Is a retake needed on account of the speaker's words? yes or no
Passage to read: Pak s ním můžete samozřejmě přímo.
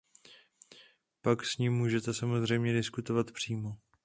yes